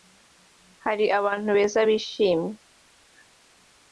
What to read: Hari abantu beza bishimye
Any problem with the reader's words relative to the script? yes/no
no